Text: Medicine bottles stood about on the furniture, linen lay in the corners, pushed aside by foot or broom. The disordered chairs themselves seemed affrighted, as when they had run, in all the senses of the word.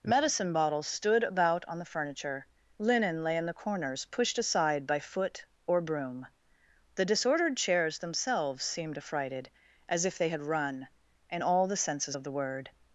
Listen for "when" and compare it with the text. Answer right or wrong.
wrong